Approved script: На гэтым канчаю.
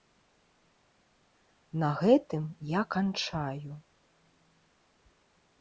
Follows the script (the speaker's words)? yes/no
no